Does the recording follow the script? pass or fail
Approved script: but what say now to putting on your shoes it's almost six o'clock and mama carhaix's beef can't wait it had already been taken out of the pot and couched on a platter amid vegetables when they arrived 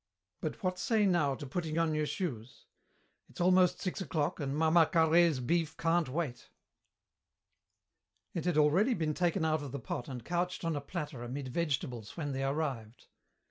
pass